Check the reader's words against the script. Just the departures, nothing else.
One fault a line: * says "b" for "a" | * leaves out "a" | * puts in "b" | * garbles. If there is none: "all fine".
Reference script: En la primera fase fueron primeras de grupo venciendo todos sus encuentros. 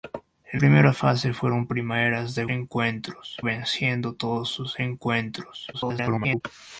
* leaves out "la"
* says "encuentros" for "grupo"
* garbles